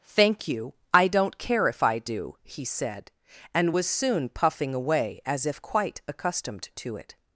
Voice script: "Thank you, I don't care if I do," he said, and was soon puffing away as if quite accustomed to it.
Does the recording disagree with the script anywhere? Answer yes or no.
no